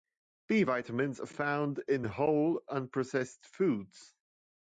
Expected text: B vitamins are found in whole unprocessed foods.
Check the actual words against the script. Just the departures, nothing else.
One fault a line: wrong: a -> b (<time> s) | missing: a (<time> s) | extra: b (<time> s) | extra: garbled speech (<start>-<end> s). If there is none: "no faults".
no faults